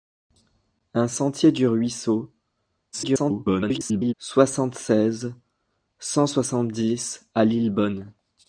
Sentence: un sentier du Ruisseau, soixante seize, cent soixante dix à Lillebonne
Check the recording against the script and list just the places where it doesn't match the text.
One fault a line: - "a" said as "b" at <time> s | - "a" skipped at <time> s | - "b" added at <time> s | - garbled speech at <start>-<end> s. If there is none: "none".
- garbled speech at 2.9-4.1 s